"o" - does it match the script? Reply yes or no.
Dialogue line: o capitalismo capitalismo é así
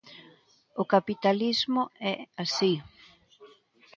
yes